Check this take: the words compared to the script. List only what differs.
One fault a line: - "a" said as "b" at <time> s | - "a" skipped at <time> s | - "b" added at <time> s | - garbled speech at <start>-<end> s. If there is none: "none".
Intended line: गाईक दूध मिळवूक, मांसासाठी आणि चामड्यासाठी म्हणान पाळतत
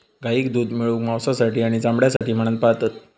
none